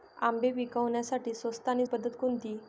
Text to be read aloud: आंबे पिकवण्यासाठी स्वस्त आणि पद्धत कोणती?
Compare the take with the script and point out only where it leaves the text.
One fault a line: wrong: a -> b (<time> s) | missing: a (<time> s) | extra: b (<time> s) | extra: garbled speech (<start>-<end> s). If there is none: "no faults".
no faults